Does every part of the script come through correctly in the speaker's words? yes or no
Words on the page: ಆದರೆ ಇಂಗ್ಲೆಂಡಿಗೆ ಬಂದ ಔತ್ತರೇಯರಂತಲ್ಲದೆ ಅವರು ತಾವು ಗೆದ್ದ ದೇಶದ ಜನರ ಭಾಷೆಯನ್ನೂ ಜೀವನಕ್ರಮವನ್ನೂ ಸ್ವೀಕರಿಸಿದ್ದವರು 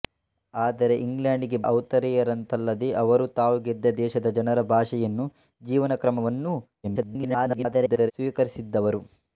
no